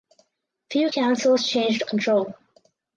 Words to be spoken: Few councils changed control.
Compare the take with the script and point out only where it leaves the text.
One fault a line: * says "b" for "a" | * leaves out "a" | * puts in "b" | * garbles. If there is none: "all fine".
all fine